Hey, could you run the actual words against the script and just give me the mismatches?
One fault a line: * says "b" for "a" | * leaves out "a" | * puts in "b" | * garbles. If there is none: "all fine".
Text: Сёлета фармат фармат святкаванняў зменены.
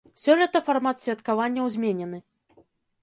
* leaves out "фармат"